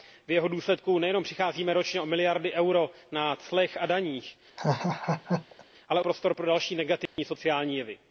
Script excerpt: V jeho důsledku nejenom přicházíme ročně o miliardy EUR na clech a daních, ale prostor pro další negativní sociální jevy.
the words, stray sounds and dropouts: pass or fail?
fail